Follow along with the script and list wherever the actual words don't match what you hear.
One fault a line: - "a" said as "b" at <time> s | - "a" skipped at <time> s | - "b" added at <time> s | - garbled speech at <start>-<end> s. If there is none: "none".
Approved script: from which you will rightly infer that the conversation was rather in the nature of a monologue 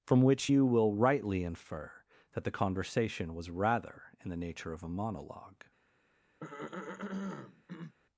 none